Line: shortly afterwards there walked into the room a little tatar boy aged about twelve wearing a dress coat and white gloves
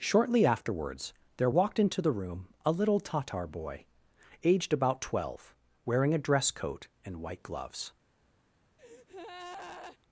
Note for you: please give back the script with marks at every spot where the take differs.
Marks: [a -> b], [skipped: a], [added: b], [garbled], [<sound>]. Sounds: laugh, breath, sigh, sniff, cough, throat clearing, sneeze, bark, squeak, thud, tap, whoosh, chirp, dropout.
shortly afterwards there walked into the room a little tatar boy aged about twelve wearing a dress coat and white gloves [breath]